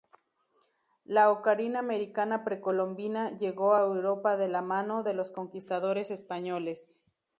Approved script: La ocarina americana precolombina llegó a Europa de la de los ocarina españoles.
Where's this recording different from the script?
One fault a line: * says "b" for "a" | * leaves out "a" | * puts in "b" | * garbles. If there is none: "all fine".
* puts in "mano"
* says "conquistadores" for "ocarina"